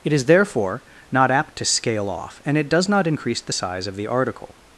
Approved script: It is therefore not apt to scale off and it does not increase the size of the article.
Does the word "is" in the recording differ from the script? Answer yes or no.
no